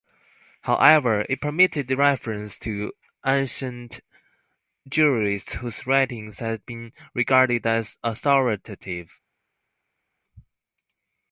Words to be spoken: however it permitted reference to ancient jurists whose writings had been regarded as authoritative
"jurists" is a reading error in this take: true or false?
false